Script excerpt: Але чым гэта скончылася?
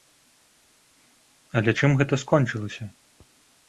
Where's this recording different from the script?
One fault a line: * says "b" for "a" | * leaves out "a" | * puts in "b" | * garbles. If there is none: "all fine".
all fine